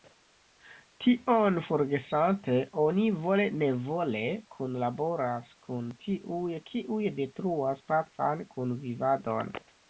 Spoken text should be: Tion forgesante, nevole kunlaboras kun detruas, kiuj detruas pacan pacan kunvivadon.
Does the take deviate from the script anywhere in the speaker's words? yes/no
yes